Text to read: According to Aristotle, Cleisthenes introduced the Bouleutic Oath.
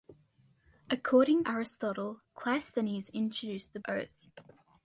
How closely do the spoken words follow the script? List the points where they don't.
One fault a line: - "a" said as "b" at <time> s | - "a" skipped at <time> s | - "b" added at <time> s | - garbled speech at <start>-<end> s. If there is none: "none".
- "to" skipped at 1.4 s
- "Bouleutic" skipped at 3.8 s